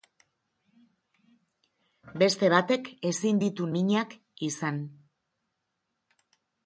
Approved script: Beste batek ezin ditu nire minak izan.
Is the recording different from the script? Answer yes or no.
yes